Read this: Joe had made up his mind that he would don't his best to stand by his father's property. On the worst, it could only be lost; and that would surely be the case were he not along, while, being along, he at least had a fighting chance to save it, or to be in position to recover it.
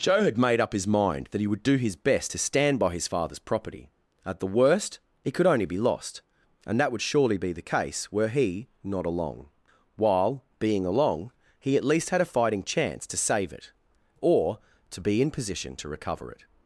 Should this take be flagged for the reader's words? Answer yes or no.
yes